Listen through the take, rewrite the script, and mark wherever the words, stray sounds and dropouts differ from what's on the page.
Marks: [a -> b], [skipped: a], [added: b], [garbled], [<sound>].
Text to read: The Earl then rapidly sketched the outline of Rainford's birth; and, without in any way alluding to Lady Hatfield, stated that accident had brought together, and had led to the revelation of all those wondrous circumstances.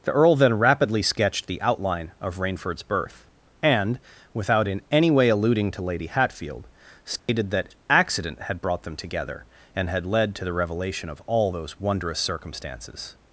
The Earl then rapidly sketched the outline of Rainford's birth; and, without in any way alluding to Lady Hatfield, stated [dropout] that accident had brought [added: them] together, and had led to the revelation of all those wondrous circumstances.